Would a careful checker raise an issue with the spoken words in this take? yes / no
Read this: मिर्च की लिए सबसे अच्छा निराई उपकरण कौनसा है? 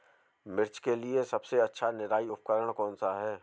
yes